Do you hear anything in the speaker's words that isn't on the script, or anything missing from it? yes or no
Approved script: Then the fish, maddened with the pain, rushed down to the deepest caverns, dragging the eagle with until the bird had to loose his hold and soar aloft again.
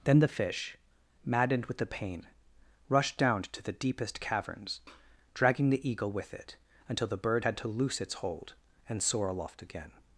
yes